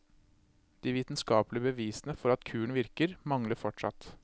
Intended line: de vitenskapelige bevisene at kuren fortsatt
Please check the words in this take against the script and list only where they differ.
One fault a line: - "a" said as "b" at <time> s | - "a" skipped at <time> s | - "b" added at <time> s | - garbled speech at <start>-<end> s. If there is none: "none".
- "for" added at 2.2 s
- "virker mangler" added at 2.8 s